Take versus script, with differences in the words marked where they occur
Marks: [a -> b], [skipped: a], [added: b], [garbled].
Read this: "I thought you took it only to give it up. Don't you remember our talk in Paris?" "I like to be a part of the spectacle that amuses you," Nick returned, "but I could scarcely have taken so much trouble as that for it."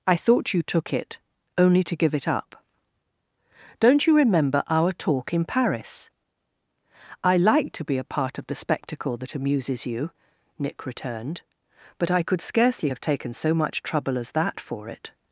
"I thought you took it only to give it up. Don't you remember our talk in Paris?" "I like to be a part of the spectacle that amuses you," Nick returned, "but I could scarcely have taken so much trouble as that for it."